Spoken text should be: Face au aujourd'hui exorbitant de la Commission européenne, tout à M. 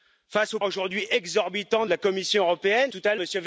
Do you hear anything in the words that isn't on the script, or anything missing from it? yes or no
no